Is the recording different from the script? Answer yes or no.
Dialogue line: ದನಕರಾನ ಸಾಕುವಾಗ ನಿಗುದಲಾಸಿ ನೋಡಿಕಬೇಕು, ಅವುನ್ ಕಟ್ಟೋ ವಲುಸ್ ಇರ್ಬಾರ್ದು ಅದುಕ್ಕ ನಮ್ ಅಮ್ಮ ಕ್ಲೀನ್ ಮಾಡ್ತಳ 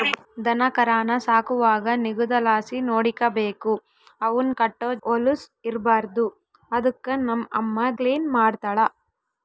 no